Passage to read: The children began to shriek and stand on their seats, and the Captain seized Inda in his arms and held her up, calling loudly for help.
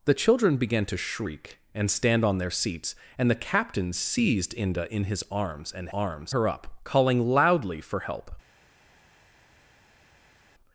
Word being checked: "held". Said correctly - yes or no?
no